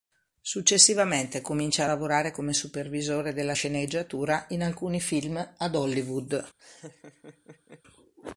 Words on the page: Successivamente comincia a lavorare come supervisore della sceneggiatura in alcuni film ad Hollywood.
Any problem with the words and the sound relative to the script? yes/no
yes